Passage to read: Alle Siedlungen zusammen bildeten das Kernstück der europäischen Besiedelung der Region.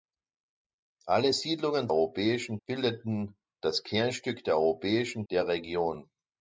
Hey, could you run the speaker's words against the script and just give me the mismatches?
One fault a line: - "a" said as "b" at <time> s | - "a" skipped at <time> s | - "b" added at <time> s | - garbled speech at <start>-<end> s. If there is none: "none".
- "zusammen" said as "europäischen" at 1.9 s
- "Besiedelung" skipped at 5.3 s